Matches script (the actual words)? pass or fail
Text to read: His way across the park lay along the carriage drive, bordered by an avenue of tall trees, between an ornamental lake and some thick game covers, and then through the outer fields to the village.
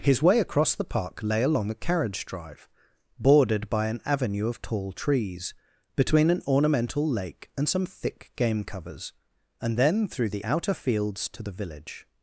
pass